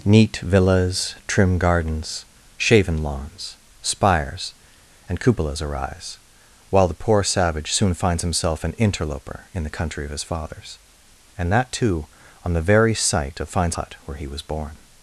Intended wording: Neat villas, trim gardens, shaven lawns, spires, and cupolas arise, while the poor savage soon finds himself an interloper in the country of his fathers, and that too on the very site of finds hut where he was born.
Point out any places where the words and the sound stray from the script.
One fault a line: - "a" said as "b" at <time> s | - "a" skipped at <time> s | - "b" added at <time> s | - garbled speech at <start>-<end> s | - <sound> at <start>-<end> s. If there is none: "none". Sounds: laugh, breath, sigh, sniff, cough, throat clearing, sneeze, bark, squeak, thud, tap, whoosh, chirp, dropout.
none